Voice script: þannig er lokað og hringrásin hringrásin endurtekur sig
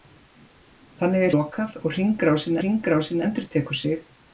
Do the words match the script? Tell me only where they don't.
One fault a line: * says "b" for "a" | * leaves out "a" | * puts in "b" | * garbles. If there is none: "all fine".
all fine